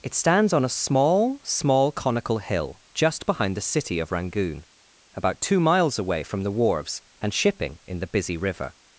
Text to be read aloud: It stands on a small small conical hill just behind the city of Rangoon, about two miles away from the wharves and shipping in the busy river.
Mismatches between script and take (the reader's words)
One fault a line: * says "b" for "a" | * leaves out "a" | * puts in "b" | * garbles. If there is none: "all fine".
all fine